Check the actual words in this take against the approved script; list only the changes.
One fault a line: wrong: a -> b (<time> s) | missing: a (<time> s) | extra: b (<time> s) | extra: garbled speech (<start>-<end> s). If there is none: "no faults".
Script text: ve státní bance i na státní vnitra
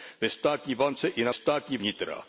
no faults